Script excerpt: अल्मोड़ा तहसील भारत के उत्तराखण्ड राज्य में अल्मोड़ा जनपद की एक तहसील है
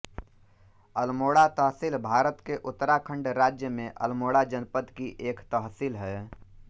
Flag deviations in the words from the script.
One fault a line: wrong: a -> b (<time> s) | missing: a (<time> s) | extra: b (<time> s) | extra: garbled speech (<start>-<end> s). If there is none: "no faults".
no faults